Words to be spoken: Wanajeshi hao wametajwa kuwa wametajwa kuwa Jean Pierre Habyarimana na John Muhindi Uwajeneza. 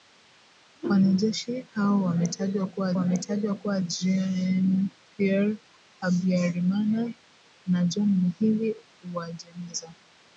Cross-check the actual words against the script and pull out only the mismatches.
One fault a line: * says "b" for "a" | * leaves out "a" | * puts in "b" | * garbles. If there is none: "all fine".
all fine